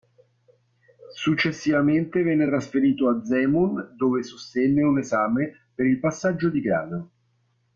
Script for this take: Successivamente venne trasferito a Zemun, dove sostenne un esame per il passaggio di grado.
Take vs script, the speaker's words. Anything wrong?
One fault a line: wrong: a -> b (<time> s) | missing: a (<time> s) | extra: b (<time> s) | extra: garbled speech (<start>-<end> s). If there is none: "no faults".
no faults